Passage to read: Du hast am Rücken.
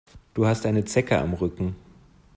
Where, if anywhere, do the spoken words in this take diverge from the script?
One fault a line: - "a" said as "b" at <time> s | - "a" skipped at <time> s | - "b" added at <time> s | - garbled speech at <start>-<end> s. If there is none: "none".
- "eine Zecke" added at 0.7 s